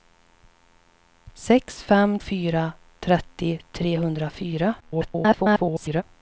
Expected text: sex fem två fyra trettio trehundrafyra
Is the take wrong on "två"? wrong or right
wrong